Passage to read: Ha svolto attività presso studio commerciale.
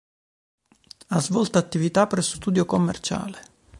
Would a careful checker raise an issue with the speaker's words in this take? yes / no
no